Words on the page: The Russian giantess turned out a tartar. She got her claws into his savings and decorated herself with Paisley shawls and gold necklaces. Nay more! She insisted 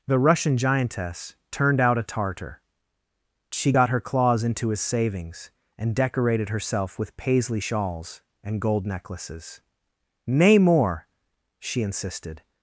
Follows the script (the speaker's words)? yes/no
yes